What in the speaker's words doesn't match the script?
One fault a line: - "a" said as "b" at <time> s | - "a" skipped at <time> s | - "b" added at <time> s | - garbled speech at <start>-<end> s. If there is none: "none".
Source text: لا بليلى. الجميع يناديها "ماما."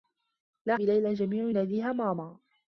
none